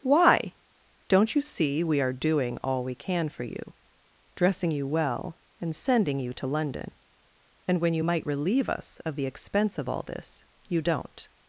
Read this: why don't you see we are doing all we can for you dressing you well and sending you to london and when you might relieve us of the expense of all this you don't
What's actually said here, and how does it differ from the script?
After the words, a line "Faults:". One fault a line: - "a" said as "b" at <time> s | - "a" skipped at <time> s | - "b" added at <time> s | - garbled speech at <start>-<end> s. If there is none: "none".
why don't you see we are doing all we can for you dressing you well and sending you to london and when you might relieve us of the expense of all this you don't
Faults:
none